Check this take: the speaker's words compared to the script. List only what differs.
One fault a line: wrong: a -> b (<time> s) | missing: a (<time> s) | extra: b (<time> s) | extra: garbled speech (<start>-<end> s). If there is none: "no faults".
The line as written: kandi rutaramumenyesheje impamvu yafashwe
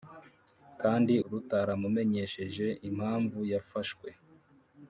no faults